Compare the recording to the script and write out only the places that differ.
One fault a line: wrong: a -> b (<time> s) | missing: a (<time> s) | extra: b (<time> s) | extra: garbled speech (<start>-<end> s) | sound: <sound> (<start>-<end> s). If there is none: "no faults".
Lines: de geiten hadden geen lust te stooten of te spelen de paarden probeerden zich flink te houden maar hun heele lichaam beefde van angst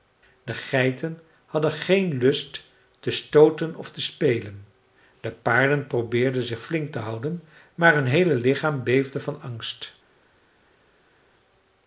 no faults